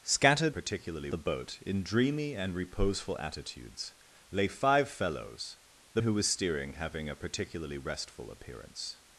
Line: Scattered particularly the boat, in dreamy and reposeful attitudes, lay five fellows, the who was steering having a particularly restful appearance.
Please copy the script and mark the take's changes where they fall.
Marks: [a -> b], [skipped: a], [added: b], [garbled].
Scattered particularly the boat, in dreamy and reposeful attitudes, lay five fellows, the who was steering having a particularly restful appearance.